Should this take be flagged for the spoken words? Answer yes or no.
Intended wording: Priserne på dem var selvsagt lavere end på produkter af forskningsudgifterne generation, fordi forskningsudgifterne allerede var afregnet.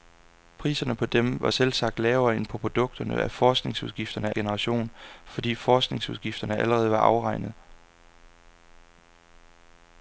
no